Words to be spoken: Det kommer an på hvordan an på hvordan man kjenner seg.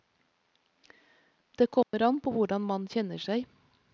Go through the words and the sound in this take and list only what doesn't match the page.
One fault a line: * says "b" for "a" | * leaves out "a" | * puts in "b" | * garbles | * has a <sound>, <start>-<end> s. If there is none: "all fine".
* has a dropout, 1.8-1.9 s
* leaves out "an på hvordan"